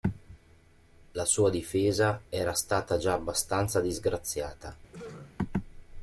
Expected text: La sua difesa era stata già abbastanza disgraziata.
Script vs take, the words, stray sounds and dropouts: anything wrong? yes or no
yes